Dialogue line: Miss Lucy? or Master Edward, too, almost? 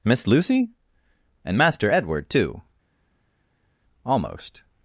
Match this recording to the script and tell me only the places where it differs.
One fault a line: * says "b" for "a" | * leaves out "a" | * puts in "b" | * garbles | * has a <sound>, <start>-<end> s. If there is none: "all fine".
* says "and" for "or"